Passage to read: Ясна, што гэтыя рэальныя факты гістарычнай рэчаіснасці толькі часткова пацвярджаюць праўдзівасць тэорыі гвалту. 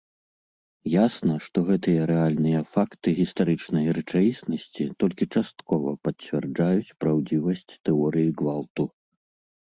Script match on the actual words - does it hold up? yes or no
yes